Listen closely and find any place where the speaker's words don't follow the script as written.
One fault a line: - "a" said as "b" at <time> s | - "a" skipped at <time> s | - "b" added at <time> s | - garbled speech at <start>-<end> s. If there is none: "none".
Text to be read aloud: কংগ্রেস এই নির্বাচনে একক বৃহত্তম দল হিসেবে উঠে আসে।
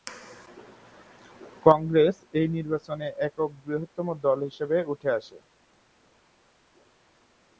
none